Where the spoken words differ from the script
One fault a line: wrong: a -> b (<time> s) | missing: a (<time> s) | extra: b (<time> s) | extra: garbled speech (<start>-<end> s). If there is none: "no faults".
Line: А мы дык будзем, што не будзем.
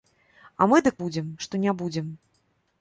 no faults